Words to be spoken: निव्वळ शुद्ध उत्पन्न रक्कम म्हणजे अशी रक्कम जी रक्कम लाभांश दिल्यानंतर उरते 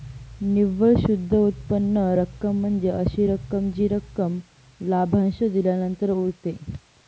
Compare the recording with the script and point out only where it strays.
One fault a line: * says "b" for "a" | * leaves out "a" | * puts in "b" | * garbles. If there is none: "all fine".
all fine